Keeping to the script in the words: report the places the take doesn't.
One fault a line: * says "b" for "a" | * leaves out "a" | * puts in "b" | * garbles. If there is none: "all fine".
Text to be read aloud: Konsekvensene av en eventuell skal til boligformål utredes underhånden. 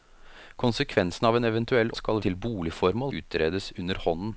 all fine